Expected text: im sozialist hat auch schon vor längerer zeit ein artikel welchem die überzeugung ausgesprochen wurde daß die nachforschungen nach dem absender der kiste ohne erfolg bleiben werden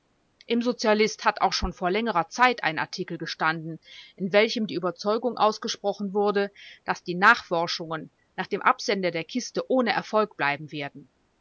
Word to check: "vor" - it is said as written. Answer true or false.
true